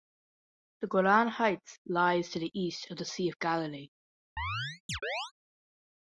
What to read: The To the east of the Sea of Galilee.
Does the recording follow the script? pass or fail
fail